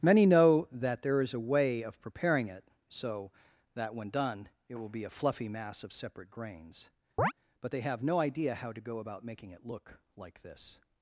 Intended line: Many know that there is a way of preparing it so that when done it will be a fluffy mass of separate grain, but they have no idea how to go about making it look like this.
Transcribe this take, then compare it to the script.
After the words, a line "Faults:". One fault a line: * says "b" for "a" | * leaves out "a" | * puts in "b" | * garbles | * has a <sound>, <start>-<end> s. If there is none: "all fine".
Many know that there is a way of preparing it so that when done it will be a fluffy mass of separate grains, but they have no idea how to go about making it look like this.
Faults:
* says "grains" for "grain"
* has a chirp, 7.2-7.3 s